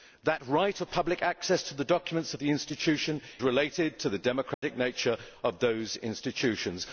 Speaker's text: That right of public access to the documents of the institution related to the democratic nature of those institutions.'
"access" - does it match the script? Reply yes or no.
yes